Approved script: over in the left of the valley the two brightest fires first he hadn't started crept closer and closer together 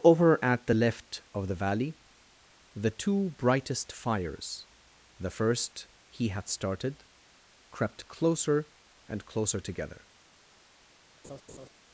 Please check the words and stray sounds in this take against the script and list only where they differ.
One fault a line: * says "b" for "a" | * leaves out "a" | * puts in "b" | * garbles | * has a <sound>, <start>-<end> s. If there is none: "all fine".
* says "at" for "in"
* puts in "the"
* says "had" for "hadn't"
* has a laugh, 11.2-11.7 s